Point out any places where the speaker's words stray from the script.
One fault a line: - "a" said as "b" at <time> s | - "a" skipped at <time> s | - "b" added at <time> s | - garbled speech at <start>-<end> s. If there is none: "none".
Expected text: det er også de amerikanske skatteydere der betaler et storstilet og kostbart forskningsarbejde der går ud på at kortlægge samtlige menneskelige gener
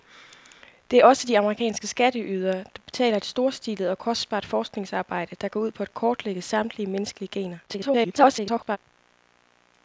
- garbled speech at 7.7-8.8 s